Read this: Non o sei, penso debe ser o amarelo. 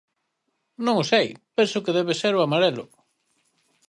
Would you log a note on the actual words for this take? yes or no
yes